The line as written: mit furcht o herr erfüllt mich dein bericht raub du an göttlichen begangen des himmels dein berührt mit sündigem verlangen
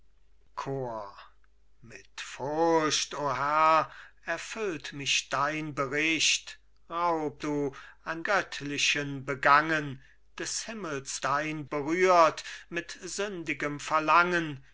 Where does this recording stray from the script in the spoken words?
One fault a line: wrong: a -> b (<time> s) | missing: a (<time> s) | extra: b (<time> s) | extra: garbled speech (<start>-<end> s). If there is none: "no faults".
no faults